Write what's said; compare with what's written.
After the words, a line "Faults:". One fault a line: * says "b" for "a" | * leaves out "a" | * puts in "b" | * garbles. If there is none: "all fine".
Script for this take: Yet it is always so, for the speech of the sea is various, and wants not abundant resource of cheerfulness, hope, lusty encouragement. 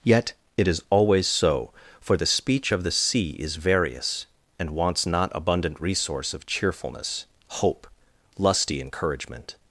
Yet it is always so, for the speech of the sea is various, and wants not abundant resource of cheerfulness, hope, lusty encouragement.
Faults:
all fine